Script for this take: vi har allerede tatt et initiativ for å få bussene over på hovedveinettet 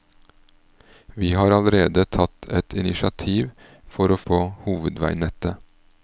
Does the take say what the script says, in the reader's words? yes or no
no